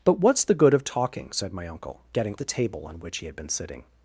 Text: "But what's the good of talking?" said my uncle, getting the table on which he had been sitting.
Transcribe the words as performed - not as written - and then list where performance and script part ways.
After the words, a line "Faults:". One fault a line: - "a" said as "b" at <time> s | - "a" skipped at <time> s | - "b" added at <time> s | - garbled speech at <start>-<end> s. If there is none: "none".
"But what's the good of talking?" said my uncle, getting the table on which he had been sitting.
Faults:
none